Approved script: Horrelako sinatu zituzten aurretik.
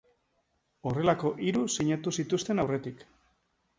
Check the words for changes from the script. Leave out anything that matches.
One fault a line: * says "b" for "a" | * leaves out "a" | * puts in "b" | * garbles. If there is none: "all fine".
* puts in "hiru"